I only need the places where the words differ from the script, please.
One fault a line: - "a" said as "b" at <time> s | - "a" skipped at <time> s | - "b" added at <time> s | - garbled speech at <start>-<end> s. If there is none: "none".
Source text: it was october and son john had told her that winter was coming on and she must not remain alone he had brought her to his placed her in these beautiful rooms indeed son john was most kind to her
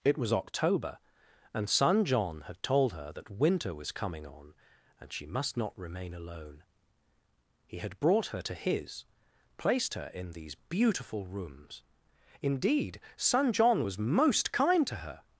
none